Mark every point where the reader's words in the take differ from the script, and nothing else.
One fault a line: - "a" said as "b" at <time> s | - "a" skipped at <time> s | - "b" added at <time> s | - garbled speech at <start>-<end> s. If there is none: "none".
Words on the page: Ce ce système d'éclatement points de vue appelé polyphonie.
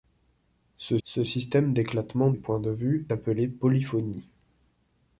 none